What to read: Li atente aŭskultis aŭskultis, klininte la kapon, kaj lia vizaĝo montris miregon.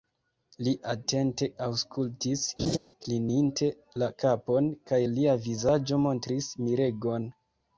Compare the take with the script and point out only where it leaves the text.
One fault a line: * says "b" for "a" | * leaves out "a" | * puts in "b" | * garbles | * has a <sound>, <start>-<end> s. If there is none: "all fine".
* leaves out "aŭskultis"
* has a laugh, 2.6-2.8 s